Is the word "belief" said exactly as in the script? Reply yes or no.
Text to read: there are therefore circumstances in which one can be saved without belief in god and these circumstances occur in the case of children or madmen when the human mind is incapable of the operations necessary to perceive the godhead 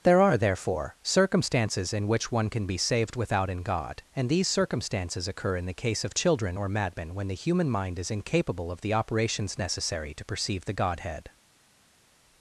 no